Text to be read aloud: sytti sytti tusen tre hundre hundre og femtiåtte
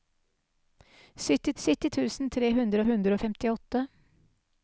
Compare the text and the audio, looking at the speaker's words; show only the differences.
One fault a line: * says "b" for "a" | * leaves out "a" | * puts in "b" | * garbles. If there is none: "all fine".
all fine